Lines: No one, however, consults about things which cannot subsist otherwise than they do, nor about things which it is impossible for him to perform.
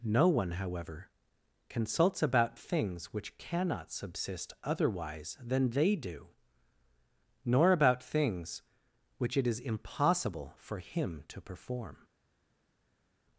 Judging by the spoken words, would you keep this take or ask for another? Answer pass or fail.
pass